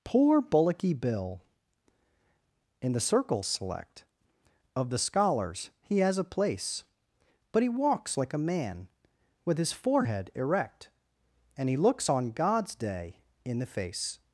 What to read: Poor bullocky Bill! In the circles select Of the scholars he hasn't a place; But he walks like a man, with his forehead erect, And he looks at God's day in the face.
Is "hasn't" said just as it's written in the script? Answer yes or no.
no